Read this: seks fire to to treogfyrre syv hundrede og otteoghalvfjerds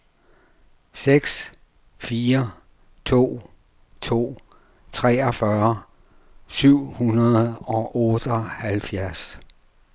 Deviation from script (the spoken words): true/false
false